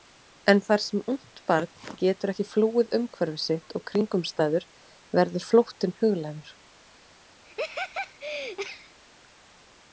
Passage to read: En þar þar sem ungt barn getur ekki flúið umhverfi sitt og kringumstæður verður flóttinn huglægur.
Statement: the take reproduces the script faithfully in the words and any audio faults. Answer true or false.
false